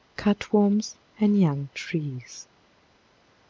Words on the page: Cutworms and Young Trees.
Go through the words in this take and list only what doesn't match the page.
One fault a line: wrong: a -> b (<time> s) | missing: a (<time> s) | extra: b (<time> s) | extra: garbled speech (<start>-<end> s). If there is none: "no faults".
no faults